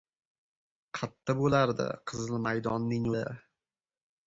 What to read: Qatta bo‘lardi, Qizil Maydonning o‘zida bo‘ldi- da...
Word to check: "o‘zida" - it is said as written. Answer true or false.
false